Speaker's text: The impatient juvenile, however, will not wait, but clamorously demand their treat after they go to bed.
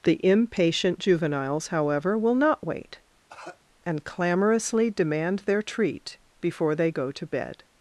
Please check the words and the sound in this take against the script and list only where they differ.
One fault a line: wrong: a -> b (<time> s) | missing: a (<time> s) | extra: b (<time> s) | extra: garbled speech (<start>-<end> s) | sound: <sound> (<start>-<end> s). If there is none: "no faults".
wrong: juvenile -> juveniles (1.0 s)
sound: cough (3.3-3.6 s)
wrong: but -> and (3.9 s)
wrong: after -> before (6.4 s)